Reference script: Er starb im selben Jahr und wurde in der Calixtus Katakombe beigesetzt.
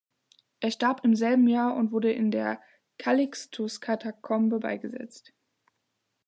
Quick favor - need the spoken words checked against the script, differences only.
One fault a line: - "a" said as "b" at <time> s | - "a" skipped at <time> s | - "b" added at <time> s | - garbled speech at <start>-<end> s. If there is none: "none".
none